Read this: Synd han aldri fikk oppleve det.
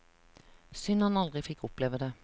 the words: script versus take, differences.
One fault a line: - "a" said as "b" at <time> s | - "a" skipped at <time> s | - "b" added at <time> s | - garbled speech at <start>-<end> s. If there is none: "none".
none